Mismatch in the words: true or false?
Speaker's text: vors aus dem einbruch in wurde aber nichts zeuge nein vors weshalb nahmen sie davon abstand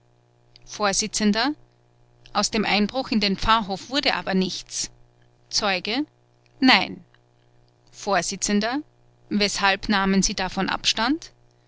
true